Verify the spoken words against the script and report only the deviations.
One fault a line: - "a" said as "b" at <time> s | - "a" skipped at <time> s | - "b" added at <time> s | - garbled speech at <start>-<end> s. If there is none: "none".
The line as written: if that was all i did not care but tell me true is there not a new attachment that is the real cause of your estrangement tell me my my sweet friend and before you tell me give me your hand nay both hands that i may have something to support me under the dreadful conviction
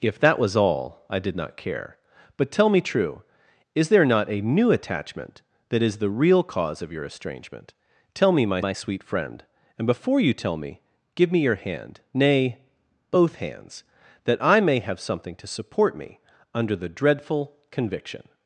none